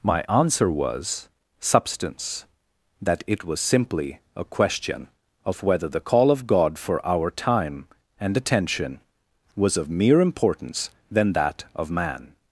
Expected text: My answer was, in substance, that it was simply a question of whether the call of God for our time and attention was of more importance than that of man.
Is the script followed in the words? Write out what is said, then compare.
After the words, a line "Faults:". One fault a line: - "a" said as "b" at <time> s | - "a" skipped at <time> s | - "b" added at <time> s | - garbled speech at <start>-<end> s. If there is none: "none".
My answer was, substance, that it was simply a question of whether the call of God for our time and attention was of mere importance than that of man.
Faults:
- "in" skipped at 1.3 s
- "more" said as "mere" at 9.9 s